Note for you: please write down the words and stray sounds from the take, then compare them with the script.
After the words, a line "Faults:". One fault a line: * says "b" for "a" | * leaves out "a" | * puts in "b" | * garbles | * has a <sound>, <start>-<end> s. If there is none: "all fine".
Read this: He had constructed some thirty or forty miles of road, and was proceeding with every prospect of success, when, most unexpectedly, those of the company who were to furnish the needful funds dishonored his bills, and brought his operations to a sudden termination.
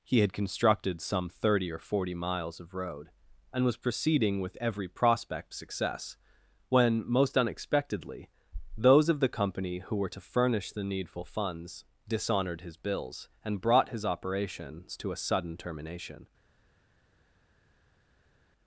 He had constructed some thirty or forty miles of road, and was proceeding with every prospect success, when, most unexpectedly, those of the company who were to furnish the needful funds dishonored his bills, and brought his operations to a sudden termination.
Faults:
* leaves out "of"